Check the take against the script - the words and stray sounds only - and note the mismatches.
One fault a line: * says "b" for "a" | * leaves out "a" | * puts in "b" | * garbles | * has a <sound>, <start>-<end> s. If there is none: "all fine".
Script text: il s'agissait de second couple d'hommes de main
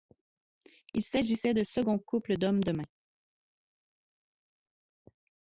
all fine